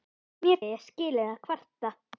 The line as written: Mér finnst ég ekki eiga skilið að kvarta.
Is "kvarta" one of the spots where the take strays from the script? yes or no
no